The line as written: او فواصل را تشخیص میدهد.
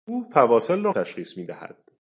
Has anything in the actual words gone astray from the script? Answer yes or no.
no